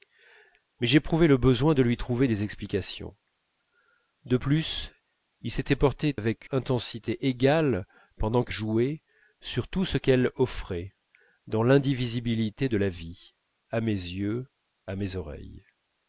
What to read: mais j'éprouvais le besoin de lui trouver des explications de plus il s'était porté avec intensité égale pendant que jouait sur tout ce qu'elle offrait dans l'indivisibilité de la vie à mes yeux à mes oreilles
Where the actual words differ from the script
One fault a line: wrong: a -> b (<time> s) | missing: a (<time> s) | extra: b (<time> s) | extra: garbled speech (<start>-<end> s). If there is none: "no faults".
no faults